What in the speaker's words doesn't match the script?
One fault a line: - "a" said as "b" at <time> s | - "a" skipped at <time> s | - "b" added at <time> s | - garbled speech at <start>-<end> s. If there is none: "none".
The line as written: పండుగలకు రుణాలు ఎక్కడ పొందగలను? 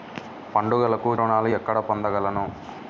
none